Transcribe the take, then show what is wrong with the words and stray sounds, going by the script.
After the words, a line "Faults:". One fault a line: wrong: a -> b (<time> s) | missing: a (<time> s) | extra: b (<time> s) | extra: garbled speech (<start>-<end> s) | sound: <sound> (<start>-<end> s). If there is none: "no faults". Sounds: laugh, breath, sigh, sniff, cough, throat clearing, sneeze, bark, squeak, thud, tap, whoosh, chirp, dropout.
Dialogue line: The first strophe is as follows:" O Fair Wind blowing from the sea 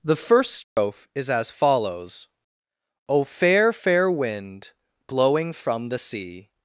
The first strophe is as follows:" O Fair Fair Wind blowing from the sea
Faults:
sound: dropout (0.6-0.8 s)
extra: Fair (3.7 s)